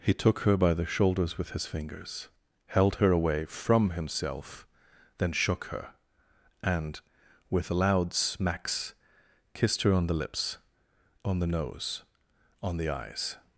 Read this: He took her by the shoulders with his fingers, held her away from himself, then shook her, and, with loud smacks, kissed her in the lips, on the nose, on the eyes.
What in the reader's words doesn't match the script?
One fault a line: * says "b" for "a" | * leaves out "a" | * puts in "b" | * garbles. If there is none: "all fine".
* says "on" for "in"